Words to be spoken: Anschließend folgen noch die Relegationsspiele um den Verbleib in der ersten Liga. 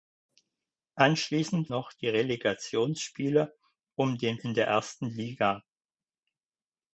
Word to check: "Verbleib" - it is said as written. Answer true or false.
false